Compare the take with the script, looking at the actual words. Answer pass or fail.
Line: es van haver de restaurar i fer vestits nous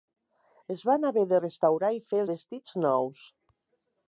pass